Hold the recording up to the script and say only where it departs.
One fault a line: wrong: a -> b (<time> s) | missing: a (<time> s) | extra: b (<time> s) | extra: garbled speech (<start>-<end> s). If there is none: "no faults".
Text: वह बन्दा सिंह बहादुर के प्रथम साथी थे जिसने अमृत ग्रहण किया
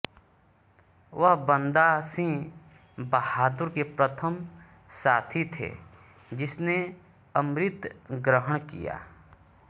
no faults